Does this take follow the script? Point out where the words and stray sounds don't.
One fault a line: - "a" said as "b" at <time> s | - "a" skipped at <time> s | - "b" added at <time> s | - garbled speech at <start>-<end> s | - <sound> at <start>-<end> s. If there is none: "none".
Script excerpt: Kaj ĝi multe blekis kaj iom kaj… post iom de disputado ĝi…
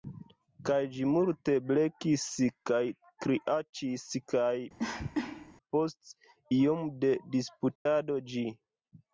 - "iom" said as "kriaĉis" at 3.2 s
- cough at 4.8-5.5 s
- dropout at 7.8-7.9 s